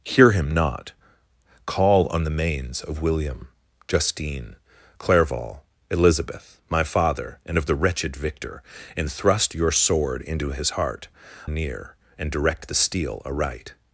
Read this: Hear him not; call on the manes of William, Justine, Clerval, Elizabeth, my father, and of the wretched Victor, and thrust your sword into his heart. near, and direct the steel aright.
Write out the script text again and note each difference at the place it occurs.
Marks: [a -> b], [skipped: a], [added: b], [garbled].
Hear him not; call on the manes of William, Justine, Clerval, Elizabeth, my father, and of the wretched Victor, and thrust your sword into his heart. near, and direct the steel aright.